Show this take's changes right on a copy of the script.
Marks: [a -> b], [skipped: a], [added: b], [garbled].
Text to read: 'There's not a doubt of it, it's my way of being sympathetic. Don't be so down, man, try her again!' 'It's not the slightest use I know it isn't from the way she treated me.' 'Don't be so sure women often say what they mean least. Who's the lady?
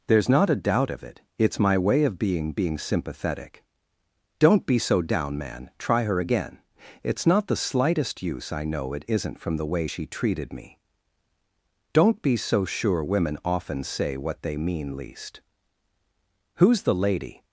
'There's not a doubt of it, it's my way of being [added: being] sympathetic. Don't be so down, man, try her again!' 'It's not the slightest use I know it isn't from the way she treated me.' 'Don't be so sure women often say what they mean least. Who's the lady?